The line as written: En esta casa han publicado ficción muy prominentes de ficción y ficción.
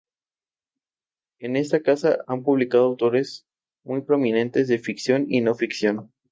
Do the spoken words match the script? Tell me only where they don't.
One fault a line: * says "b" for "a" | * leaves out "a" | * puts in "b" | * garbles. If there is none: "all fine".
* says "autores" for "ficción"
* puts in "no"